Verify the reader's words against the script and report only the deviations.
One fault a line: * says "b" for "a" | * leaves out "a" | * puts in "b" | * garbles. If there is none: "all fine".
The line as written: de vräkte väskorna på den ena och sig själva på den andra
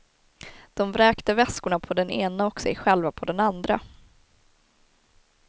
all fine